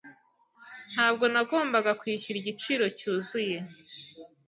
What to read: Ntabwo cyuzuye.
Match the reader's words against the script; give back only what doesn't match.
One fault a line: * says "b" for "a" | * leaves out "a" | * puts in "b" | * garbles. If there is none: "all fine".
* puts in "nagombaga kwishyura igiciro"